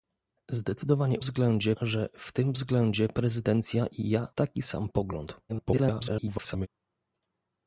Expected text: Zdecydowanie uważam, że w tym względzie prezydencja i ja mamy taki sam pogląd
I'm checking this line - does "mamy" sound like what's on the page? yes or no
no